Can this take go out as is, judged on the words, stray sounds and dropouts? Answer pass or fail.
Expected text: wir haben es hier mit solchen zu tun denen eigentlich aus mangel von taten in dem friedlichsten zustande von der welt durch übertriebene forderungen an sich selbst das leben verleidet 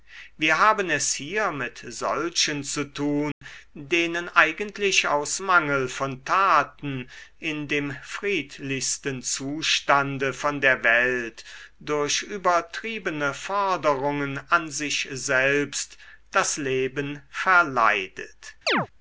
fail